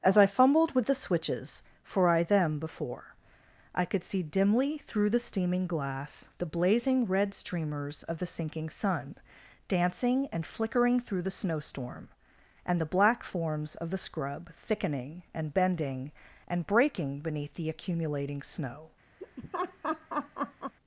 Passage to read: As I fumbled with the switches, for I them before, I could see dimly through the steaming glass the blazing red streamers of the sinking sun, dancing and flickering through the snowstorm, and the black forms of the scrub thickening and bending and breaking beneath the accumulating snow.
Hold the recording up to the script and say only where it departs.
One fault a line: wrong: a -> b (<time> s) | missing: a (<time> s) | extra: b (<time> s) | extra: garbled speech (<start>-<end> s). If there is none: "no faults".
no faults